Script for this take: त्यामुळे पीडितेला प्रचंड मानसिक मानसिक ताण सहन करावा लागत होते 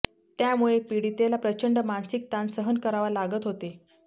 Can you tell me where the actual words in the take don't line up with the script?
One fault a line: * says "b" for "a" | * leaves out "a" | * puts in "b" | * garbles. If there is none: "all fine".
* leaves out "मानसिक"